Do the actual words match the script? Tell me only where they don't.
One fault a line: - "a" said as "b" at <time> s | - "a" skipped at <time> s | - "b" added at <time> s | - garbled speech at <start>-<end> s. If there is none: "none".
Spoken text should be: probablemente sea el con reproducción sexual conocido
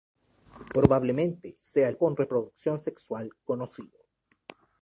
none